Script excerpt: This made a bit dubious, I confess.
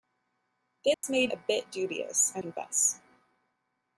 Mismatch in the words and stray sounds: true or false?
true